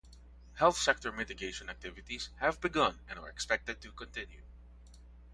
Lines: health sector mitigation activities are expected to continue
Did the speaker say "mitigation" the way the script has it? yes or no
yes